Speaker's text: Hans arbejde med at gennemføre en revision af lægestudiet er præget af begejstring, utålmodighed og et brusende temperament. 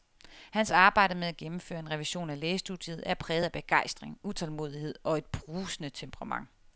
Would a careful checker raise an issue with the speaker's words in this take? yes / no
no